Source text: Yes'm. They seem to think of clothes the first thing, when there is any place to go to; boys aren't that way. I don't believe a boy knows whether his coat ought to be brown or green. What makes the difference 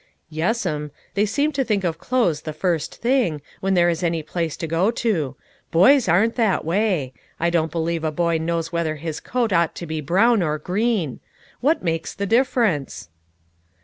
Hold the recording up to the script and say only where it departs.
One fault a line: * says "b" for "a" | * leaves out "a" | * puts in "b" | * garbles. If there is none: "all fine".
all fine